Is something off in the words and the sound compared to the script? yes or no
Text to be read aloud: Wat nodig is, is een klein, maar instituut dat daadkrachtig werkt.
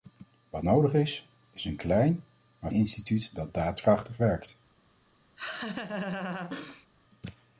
yes